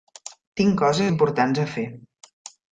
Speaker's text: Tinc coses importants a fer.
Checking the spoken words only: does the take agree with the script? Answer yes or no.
yes